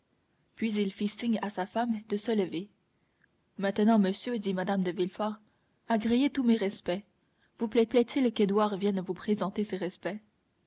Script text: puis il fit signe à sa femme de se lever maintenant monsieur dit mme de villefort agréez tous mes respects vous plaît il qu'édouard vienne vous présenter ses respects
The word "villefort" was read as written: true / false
true